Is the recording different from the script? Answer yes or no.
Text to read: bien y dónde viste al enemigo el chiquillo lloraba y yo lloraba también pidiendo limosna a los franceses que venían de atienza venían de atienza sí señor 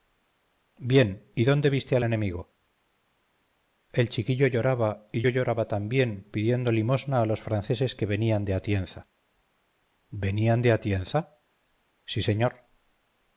no